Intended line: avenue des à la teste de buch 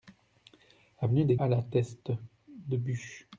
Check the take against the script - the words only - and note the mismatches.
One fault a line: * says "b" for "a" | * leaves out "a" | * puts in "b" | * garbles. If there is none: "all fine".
all fine